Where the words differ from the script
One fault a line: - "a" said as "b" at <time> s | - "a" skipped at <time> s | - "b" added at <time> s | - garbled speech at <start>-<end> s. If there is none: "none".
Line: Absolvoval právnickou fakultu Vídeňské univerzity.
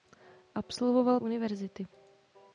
- "právnickou fakultu Vídeňské" skipped at 1.2 s